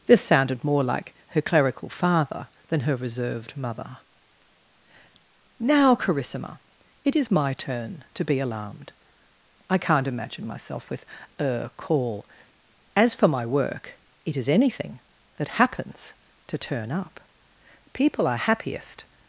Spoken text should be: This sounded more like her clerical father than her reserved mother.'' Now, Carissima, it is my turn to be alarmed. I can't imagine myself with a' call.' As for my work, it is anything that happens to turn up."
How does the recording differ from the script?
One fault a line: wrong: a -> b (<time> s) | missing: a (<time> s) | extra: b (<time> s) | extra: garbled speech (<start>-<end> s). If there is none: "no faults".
extra: People are happiest (17.9 s)